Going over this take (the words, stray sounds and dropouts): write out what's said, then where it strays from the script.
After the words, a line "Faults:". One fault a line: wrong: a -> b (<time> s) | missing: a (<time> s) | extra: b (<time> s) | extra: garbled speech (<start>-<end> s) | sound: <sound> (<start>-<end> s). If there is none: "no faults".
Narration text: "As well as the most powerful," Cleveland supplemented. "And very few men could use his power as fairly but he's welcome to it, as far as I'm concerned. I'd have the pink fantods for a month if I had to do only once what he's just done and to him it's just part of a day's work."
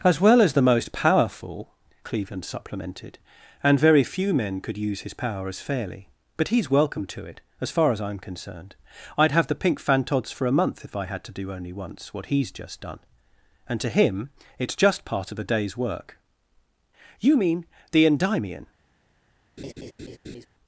"As well as the most powerful," Cleveland supplemented. "And very few men could use his power as fairly but he's welcome to it, as far as I'm concerned. I'd have the pink fantods for a month if I had to do only once what he's just done and to him it's just part of a day's work." "You mean the Endymion
Faults:
extra: You mean the Endymion (17.2 s)
sound: laugh (19.6-20.5 s)